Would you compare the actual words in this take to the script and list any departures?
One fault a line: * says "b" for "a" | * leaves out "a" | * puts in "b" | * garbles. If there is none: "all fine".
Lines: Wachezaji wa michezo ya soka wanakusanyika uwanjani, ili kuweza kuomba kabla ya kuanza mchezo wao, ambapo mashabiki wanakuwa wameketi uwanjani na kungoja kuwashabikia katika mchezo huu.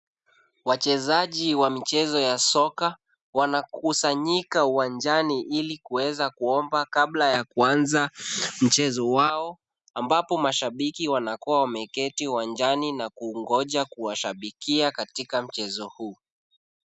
all fine